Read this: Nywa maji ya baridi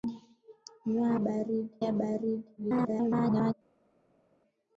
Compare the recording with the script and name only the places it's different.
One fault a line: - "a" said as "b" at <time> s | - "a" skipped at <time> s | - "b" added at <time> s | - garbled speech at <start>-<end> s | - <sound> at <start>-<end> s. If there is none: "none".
- "maji" said as "baridi" at 1.2 s
- garbled speech at 2.6-3.5 s